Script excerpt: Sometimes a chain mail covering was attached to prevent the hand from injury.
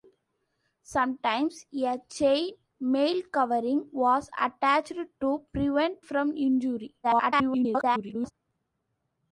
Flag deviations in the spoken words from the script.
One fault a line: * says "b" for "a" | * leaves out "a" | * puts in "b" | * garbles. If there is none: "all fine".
* leaves out "the hand"
* garbles